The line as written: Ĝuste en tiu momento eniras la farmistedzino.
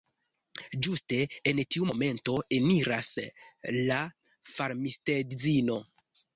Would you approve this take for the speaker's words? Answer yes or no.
yes